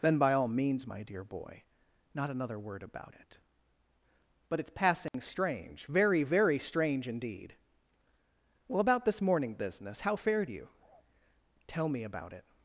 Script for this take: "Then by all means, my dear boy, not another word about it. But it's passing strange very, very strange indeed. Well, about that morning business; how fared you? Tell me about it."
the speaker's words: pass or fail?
fail